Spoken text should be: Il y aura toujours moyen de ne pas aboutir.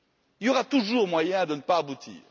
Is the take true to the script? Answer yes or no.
yes